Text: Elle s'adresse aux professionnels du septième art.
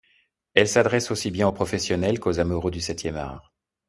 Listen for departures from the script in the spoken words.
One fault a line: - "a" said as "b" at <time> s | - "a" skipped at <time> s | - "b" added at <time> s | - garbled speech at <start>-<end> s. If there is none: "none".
- "aussi bien" added at 1.1 s
- "qu'aux amoureux" added at 2.2 s